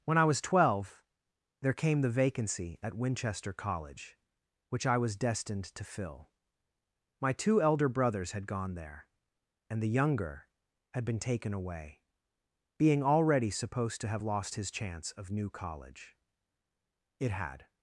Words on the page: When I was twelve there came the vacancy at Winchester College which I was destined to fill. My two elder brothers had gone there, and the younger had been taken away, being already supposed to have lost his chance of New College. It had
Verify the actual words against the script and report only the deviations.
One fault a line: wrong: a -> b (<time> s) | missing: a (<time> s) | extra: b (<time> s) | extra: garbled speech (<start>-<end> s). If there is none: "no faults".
no faults